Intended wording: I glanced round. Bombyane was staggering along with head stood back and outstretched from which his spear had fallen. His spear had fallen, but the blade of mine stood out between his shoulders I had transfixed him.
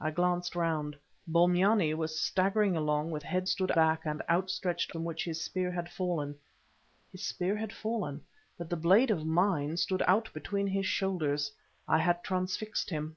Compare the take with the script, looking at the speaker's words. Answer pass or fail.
pass